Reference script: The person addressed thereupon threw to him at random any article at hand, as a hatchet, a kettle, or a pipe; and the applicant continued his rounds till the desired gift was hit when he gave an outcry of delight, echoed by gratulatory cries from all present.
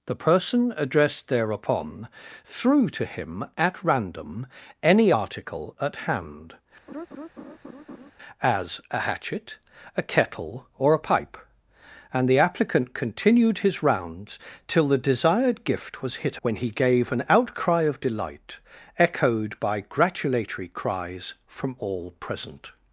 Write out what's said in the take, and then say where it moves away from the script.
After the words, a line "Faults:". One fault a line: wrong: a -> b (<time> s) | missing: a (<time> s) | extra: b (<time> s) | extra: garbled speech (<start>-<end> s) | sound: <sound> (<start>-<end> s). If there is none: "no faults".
The person addressed thereupon threw to him at random any article at hand, as a hatchet, a kettle, or a pipe; and the applicant continued his rounds till the desired gift was hit when he gave an outcry of delight, echoed by gratulatory cries from all present.
Faults:
sound: laugh (6.9-8.1 s)